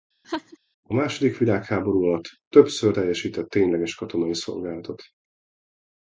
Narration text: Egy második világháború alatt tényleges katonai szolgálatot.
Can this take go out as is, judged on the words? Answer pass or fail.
fail